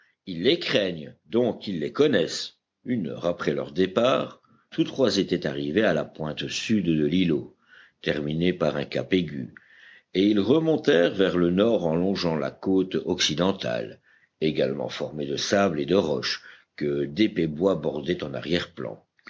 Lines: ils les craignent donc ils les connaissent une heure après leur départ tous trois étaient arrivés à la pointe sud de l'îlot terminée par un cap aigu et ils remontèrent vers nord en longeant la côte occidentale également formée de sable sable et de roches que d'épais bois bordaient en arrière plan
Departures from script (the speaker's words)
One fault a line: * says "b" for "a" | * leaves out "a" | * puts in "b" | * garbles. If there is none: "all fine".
* puts in "le"
* leaves out "sable"